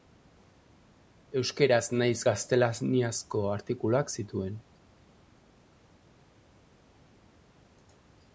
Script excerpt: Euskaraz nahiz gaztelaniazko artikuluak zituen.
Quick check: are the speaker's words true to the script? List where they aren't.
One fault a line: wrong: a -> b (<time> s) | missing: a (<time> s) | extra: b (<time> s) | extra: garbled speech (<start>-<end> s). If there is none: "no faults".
no faults